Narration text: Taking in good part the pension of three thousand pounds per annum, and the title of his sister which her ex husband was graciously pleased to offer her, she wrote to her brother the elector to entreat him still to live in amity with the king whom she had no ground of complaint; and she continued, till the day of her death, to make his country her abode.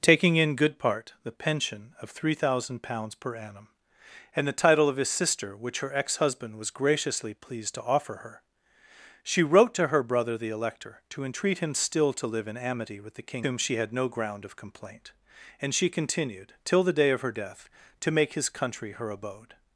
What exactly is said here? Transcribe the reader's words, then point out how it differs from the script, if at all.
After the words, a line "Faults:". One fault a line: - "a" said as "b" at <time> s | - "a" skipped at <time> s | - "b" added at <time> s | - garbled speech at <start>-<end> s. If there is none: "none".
Taking in good part the pension of three thousand pounds per annum, and the title of his sister which her ex husband was graciously pleased to offer her, she wrote to her brother the elector to entreat him still to live in amity with the king whom she had no ground of complaint; and she continued, till the day of her death, to make his country her abode.
Faults:
none